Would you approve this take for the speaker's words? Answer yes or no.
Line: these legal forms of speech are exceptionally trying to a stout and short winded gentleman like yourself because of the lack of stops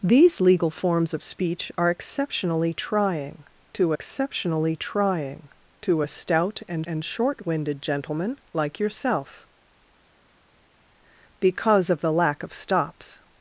no